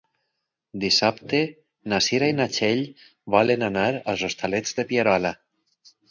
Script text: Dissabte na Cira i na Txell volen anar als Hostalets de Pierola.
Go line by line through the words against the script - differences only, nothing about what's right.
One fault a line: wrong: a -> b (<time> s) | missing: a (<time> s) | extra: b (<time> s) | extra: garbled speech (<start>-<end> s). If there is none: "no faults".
no faults